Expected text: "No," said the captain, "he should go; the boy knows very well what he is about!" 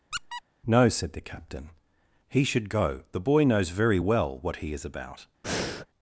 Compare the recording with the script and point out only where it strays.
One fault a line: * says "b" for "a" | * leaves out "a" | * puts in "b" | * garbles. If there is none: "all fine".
all fine